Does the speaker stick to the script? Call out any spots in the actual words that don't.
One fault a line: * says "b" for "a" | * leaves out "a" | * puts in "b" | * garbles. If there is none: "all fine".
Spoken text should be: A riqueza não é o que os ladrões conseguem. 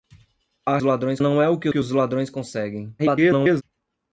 * says "ladrões" for "riqueza"
* puts in "que"
* garbles